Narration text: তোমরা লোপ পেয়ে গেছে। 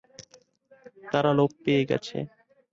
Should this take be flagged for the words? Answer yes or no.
yes